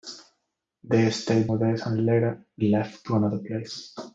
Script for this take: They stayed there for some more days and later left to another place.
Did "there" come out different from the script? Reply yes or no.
yes